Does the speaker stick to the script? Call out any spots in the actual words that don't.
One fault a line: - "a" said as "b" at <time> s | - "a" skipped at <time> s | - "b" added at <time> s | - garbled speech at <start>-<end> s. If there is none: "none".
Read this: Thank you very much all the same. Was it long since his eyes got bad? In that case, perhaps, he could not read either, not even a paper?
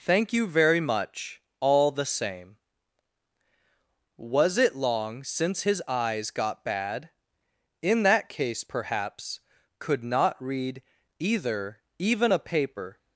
- "he" skipped at 9.4 s
- "not" skipped at 11.8 s